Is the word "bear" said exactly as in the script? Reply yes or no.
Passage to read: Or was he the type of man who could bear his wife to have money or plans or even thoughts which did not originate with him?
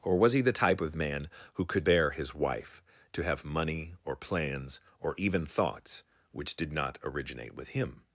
yes